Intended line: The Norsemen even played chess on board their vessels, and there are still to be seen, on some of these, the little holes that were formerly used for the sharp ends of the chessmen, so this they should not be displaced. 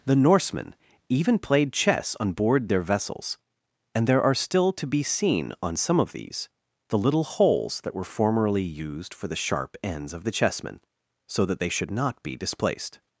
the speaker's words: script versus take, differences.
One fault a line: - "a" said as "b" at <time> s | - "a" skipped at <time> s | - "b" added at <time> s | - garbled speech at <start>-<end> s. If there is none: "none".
- "this" said as "that" at 11.4 s